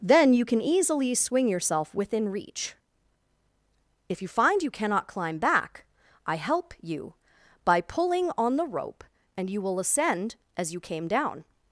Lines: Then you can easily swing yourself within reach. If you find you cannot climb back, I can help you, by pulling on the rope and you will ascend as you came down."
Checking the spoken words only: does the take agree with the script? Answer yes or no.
no